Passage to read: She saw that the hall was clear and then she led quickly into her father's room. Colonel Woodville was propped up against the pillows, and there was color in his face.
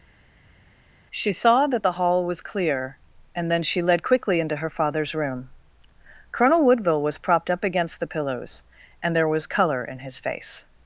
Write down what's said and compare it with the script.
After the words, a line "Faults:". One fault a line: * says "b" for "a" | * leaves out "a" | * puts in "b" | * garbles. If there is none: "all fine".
She saw that the hall was clear and then she led quickly into her father's room. Colonel Woodville was propped up against the pillows, and there was color in his face.
Faults:
all fine